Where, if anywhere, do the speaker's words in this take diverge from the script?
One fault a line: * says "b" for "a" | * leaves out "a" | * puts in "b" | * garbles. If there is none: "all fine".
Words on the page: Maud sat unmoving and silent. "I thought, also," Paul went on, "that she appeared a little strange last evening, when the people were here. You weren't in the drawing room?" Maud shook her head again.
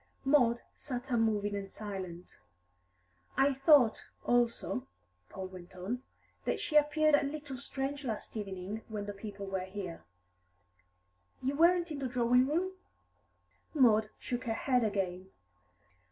all fine